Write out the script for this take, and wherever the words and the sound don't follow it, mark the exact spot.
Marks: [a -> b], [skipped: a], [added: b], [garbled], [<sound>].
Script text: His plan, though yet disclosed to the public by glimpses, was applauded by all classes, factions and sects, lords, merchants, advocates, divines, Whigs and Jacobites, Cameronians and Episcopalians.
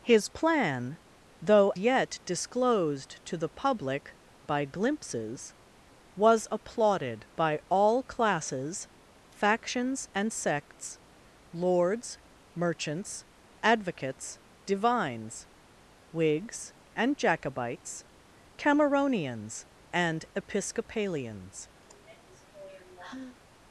His plan, though yet disclosed to the public by glimpses, was applauded by all classes, factions and sects, lords, merchants, advocates, divines, Whigs and Jacobites, Cameronians and Episcopalians. [sigh]